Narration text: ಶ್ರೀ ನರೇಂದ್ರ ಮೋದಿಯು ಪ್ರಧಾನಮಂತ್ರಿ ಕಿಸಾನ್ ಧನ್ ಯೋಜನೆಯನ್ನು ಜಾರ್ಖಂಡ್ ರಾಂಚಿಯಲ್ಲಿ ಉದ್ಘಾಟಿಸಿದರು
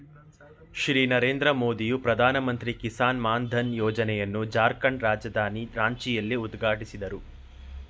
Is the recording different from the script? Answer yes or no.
yes